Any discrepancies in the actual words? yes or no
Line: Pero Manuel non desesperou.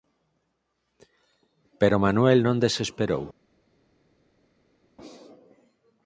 no